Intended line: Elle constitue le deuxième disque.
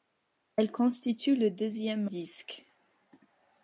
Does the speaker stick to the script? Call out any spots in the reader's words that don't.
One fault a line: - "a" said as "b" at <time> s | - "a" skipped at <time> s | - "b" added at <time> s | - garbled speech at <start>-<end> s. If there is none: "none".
none